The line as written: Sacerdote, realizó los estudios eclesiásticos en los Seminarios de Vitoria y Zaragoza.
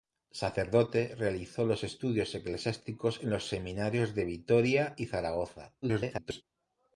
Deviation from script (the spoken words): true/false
true